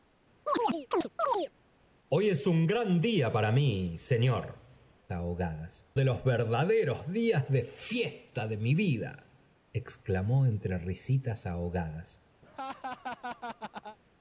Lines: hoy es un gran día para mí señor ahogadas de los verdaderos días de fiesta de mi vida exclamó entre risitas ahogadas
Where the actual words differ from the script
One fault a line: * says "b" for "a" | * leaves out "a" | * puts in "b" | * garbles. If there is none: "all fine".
all fine